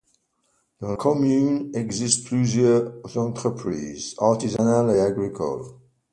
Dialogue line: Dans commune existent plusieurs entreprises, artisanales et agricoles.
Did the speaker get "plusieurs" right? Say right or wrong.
right